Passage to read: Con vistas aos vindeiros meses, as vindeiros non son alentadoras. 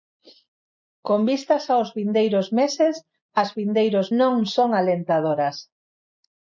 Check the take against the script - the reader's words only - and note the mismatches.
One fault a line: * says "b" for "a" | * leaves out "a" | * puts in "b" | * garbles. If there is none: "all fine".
all fine